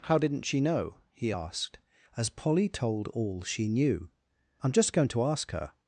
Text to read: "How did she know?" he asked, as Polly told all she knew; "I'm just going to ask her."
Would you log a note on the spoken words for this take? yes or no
yes